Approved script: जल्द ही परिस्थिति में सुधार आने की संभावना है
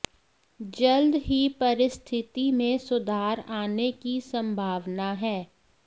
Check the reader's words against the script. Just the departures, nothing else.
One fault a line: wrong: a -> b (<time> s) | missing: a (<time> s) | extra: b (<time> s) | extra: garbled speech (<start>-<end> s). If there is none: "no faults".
no faults